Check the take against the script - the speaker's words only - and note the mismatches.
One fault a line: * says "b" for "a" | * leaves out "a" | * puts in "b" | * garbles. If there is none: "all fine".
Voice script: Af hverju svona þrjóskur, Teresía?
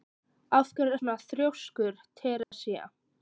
all fine